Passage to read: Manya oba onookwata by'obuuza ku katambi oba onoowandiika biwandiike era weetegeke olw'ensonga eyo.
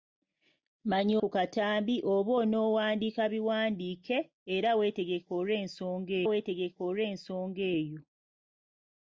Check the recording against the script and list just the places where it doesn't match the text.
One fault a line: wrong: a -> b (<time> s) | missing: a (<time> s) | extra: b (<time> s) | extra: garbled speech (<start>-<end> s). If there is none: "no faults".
missing: oba onookwata by'obuuza (1.1 s)
extra: weetegeke olw'ensonga (6.3 s)